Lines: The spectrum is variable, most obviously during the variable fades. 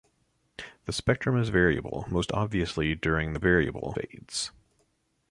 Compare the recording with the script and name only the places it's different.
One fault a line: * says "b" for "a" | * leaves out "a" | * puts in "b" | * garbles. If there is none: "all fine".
all fine